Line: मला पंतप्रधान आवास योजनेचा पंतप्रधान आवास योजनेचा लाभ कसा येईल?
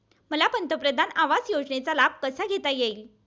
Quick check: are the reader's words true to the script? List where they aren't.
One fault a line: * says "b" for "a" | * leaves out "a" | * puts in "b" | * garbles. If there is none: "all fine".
* leaves out "पंतप्रधान आवास योजनेचा"
* puts in "घेता"